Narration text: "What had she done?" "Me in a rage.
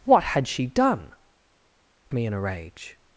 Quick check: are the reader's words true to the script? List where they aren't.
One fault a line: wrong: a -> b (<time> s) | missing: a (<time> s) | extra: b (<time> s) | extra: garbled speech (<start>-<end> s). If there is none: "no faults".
no faults